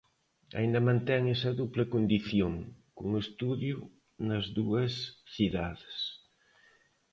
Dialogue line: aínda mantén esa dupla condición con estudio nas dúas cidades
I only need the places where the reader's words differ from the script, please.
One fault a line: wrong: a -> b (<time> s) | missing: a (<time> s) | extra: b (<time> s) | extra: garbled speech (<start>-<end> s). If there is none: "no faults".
no faults